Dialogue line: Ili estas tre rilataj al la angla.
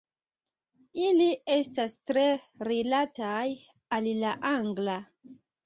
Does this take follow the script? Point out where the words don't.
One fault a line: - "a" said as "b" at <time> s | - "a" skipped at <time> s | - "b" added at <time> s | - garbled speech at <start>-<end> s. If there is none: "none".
none